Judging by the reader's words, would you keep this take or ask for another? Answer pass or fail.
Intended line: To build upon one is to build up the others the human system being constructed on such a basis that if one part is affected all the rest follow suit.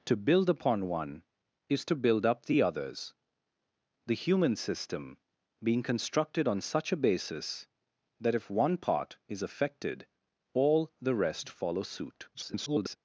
fail